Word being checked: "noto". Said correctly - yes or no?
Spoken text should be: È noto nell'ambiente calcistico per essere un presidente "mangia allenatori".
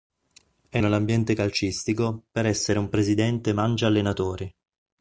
no